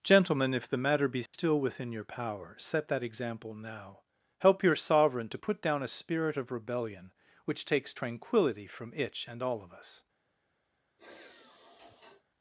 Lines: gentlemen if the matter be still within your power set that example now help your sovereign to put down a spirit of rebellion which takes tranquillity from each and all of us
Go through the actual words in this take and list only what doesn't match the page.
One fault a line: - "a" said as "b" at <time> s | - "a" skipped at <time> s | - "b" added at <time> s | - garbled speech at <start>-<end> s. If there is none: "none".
- "each" said as "itch" at 8.9 s